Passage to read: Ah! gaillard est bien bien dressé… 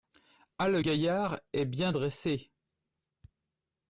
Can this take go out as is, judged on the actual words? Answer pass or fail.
fail